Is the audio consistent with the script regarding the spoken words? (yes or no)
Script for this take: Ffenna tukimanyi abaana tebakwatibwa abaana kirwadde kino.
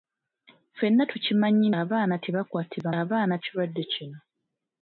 yes